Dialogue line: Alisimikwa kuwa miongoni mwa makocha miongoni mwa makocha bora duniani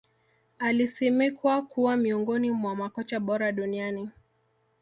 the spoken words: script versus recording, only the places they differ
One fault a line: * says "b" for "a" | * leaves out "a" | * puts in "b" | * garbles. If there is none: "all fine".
* leaves out "miongoni mwa makocha"